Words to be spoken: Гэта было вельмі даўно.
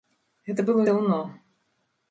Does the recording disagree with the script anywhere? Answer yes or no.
yes